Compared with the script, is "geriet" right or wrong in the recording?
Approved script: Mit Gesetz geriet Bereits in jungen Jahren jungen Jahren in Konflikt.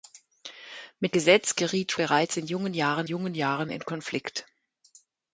right